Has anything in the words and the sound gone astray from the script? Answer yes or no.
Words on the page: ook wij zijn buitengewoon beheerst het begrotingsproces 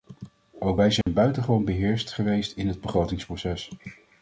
yes